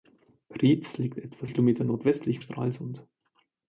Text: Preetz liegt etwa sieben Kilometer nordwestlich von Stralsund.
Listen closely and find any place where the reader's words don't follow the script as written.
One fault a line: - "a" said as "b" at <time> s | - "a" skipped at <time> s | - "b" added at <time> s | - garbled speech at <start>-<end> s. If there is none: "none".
- "sieben" skipped at 1.4 s
- "von" skipped at 2.4 s